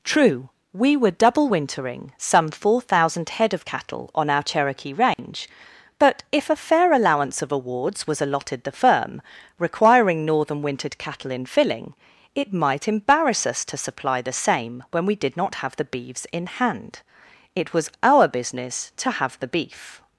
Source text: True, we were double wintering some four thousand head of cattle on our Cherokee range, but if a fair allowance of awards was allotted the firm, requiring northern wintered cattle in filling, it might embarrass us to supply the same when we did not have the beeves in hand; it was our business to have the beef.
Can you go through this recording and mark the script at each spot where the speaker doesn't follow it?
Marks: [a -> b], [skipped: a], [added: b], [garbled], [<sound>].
True, we were double wintering some four thousand head of cattle on our Cherokee range, [dropout] but if a fair allowance of awards was allotted the firm, requiring northern wintered cattle in filling, it might embarrass us to supply the same when we did not have the beeves in hand; it was our business to have the beef.